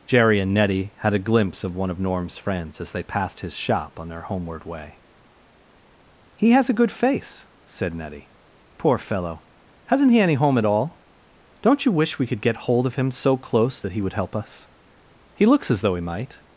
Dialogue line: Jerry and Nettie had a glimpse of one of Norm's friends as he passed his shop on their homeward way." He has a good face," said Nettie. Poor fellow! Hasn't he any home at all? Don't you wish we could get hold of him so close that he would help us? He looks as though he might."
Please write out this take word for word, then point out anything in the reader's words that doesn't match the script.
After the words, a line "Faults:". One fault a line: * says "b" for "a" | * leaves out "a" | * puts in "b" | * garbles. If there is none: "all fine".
Jerry and Nettie had a glimpse of one of Norm's friends as they passed his shop on their homeward way." He has a good face," said Nettie. Poor fellow! Hasn't he any home at all? Don't you wish we could get hold of him so close that he would help us? He looks as though he might."
Faults:
* says "they" for "he"